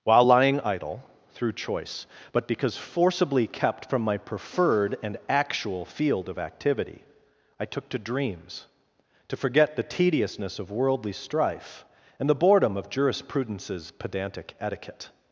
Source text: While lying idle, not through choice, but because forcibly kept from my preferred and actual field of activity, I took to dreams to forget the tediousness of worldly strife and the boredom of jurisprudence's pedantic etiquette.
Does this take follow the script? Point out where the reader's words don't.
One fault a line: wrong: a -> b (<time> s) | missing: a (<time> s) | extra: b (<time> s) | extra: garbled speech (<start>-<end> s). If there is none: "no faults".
missing: not (1.0 s)